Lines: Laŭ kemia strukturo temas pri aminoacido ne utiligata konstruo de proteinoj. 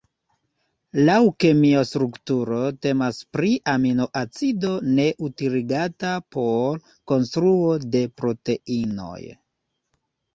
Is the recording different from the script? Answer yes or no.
yes